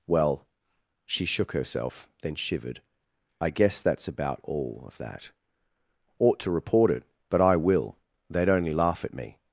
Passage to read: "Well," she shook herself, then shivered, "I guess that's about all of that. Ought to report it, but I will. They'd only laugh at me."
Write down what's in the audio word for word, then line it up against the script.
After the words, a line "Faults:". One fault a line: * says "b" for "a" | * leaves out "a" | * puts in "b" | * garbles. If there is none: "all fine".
"Well," she shook herself, then shivered, "I guess that's about all of that. Ought to report it, but I will. They'd only laugh at me."
Faults:
all fine